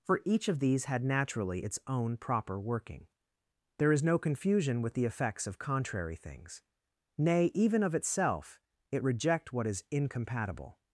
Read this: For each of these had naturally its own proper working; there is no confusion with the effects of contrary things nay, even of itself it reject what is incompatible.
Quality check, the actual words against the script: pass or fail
pass